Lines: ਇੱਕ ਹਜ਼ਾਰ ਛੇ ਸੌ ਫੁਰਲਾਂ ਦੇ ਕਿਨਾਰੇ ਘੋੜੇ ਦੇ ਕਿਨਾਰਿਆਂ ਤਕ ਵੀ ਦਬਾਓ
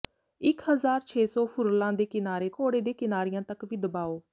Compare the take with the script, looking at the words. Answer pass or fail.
pass